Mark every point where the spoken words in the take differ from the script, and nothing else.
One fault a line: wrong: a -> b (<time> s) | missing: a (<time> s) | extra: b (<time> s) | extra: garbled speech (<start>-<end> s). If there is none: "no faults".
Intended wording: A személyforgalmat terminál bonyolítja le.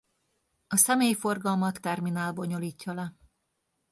no faults